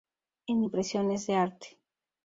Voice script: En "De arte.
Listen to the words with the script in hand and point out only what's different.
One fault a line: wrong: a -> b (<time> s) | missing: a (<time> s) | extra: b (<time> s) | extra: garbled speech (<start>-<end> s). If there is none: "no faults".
extra: Impresiones (0.6 s)